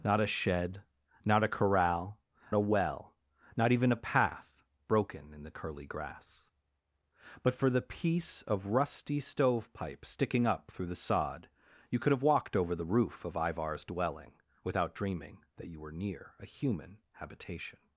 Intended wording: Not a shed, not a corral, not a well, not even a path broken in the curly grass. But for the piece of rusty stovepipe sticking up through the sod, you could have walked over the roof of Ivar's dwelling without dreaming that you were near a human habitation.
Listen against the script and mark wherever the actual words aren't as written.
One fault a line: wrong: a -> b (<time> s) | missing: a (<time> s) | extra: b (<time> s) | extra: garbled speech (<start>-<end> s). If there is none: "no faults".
missing: not (2.2 s)